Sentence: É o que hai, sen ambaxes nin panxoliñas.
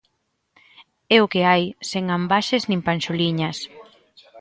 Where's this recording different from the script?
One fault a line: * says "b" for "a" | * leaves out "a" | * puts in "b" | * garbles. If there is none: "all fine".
all fine